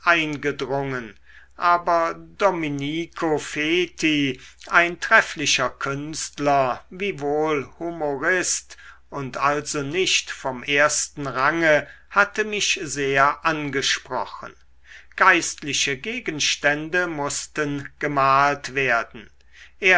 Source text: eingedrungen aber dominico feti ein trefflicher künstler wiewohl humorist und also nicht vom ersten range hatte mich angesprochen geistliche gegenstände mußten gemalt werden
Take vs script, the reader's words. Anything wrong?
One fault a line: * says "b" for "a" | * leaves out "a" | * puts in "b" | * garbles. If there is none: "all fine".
* puts in "sehr"